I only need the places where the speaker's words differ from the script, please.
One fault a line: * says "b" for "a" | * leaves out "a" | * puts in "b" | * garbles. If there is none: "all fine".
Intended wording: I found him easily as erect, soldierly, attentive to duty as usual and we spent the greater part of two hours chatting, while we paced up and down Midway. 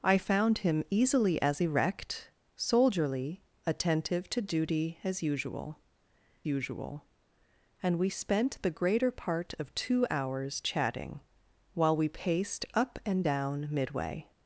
* puts in "usual"